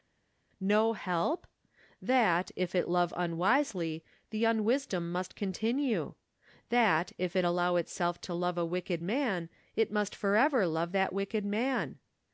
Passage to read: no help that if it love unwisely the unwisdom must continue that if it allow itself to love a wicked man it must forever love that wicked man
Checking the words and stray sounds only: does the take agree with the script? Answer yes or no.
yes